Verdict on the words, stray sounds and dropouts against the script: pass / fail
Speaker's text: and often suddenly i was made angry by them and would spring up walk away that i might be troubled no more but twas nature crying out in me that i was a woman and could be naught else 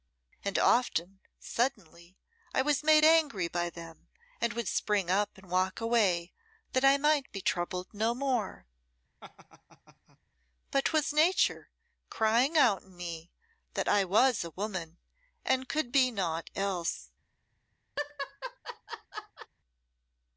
fail